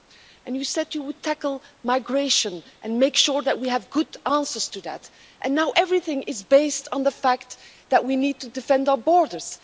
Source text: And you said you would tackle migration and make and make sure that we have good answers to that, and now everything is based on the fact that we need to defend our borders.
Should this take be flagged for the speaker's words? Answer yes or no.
yes